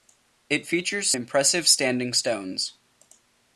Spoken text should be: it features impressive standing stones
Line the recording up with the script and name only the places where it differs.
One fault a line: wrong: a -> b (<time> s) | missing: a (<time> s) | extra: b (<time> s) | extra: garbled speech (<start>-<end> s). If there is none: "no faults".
no faults